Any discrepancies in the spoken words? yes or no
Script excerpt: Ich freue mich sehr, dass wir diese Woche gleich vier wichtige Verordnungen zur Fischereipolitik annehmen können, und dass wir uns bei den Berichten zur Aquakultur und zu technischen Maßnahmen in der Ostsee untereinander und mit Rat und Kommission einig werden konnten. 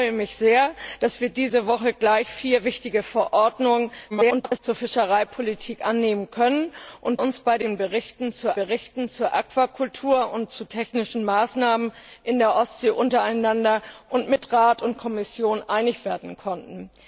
yes